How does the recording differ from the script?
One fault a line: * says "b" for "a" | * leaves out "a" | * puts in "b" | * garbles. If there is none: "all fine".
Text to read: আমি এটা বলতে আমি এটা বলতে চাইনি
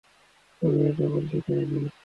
* leaves out "আমি এটা বলতে"